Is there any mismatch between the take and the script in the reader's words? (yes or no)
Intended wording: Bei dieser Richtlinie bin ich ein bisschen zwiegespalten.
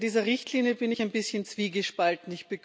no